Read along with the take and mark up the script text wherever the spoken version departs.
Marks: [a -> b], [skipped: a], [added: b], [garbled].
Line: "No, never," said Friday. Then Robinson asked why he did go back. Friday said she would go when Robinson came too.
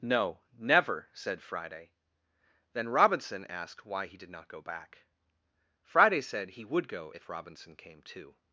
"No, never," said Friday. Then Robinson asked why he did [added: not] go back. Friday said [she -> he] would go [when -> if] Robinson came too.